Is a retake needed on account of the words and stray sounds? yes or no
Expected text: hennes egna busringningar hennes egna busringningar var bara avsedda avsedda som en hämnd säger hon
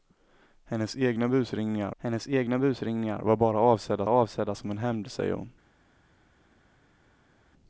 no